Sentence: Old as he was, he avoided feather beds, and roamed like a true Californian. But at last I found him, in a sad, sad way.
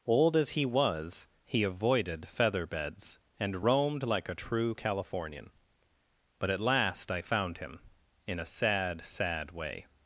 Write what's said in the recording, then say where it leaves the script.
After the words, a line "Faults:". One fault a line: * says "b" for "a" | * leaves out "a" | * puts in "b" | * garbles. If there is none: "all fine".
Old as he was, he avoided feather beds, and roamed like a true Californian. But at last I found him, in a sad, sad way.
Faults:
all fine